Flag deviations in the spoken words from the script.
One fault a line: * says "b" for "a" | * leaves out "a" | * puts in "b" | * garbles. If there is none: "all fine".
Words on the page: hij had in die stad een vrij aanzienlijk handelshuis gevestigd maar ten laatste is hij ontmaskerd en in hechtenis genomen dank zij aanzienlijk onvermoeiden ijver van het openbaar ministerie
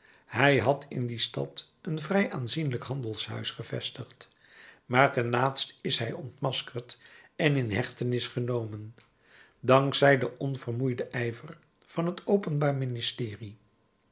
* says "den" for "aanzienlijk"